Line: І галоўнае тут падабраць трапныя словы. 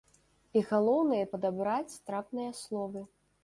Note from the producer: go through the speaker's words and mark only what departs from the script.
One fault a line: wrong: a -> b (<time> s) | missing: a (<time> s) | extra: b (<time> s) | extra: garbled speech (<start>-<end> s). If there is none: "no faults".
missing: тут (1.2 s)